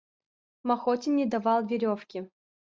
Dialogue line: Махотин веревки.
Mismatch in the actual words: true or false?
true